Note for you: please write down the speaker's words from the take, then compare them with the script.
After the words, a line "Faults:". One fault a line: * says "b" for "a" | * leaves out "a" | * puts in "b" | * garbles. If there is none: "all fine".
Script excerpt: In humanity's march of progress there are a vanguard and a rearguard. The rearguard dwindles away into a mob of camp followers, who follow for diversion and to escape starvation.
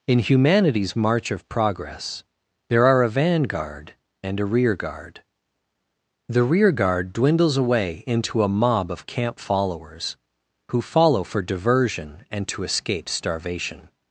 In humanity's march of progress there are a vanguard and a rearguard. The rearguard dwindles away into a mob of camp followers, who follow for diversion and to escape starvation.
Faults:
all fine